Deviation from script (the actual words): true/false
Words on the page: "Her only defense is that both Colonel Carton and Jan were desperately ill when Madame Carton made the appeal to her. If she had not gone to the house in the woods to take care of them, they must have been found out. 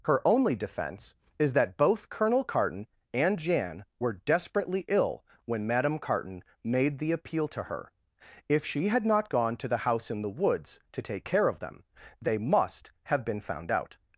false